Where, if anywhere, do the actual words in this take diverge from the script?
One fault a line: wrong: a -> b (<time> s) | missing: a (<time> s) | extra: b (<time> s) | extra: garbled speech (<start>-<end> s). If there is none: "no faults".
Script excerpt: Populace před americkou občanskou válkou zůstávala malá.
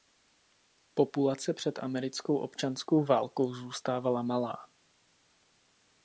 no faults